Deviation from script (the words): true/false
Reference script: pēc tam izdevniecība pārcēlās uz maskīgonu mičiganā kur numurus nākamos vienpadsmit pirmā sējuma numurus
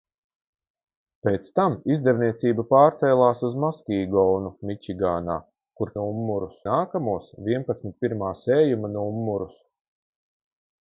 false